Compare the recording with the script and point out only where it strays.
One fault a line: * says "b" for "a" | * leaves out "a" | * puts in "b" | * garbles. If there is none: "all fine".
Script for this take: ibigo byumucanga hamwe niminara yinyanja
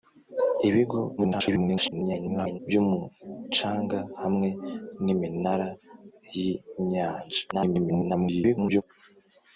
* garbles
* garbles